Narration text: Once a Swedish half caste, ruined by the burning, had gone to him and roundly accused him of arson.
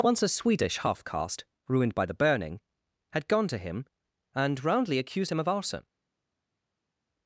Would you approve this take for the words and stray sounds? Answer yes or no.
yes